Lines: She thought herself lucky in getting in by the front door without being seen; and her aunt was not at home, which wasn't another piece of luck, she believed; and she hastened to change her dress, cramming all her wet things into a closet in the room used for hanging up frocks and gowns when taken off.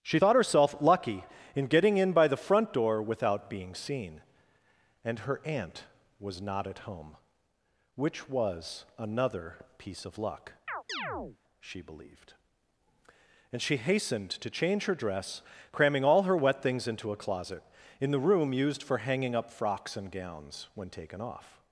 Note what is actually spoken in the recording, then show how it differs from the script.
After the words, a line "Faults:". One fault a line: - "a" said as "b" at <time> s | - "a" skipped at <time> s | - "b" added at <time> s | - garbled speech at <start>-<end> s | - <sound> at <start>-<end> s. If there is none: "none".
She thought herself lucky in getting in by the front door without being seen; and her aunt was not at home, which was another piece of luck, she believed; and she hastened to change her dress, cramming all her wet things into a closet in the room used for hanging up frocks and gowns when taken off.
Faults:
- "wasn't" said as "was" at 8.3 s
- chirp at 10.7-11.4 s